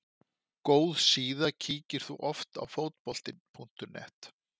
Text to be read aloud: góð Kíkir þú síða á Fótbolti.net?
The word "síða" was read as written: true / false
false